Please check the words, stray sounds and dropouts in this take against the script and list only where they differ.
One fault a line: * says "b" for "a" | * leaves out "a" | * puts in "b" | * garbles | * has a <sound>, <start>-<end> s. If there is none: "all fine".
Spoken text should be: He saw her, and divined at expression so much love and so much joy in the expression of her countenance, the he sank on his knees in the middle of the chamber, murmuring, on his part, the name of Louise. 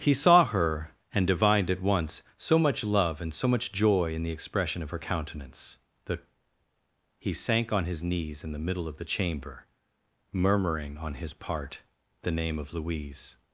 * says "once" for "expression"